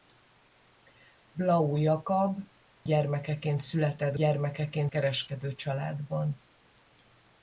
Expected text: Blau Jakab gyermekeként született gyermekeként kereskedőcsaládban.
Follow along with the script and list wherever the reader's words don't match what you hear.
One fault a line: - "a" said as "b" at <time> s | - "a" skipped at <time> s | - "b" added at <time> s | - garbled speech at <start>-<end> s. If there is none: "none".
none